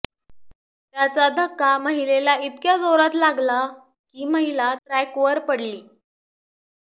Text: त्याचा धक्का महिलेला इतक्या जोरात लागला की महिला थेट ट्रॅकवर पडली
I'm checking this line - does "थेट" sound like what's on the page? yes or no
no